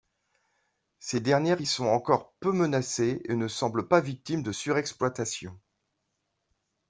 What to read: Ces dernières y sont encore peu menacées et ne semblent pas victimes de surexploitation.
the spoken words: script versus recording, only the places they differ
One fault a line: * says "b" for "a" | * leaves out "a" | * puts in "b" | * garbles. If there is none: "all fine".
all fine